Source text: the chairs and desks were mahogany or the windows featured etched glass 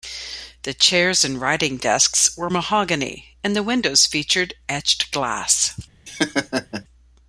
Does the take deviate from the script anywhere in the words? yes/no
yes